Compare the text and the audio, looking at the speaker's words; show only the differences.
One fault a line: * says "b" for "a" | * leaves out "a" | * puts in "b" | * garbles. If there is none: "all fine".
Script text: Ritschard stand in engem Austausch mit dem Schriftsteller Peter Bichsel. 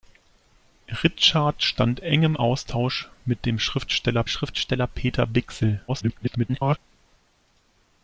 * leaves out "in"
* puts in "Schriftsteller"
* garbles